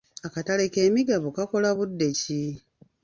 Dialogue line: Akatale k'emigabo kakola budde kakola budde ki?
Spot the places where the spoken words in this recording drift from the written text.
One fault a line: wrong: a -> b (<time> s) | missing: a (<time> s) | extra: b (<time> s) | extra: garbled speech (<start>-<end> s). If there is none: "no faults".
missing: kakola budde (2.1 s)